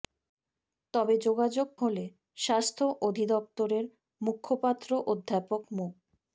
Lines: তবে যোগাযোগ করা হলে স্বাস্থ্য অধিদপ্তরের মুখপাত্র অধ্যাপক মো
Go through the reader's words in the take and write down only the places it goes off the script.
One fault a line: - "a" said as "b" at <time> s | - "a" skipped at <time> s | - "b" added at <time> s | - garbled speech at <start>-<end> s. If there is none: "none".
- "করা" skipped at 1.7 s